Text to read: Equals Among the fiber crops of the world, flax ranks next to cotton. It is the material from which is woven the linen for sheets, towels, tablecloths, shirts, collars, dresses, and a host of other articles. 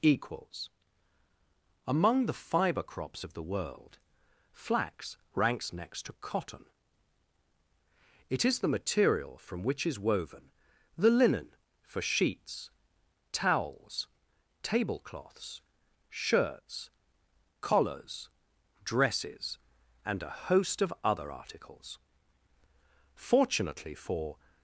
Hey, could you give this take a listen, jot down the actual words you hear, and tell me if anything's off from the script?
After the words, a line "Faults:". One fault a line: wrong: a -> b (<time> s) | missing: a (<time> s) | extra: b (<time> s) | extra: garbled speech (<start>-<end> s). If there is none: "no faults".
Equals Among the fiber crops of the world, flax ranks next to cotton. It is the material from which is woven the linen for sheets, towels, tablecloths, shirts, collars, dresses, and a host of other articles. Fortunately for
Faults:
extra: Fortunately for (23.1 s)